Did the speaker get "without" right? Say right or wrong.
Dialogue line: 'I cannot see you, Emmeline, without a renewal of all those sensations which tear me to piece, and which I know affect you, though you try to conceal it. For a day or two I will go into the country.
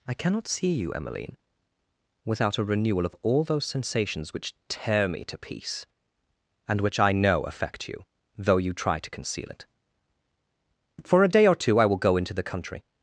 right